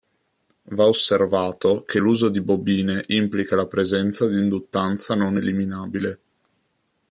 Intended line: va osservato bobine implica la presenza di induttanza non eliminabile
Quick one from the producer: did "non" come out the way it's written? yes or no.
yes